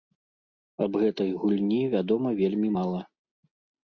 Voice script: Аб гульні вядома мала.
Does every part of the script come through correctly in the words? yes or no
no